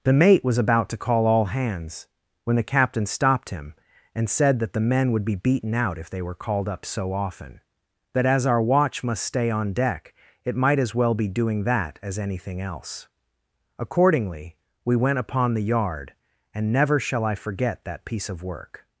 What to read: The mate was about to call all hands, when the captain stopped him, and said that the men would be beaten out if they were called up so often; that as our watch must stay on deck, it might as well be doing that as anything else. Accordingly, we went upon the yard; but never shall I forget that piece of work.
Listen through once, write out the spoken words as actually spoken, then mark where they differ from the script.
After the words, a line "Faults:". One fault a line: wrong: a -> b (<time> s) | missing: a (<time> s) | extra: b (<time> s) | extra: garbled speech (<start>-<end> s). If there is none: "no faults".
The mate was about to call all hands, when the captain stopped him, and said that the men would be beaten out if they were called up so often; that as our watch must stay on deck, it might as well be doing that as anything else. Accordingly, we went upon the yard; and never shall I forget that piece of work.
Faults:
wrong: but -> and (16.5 s)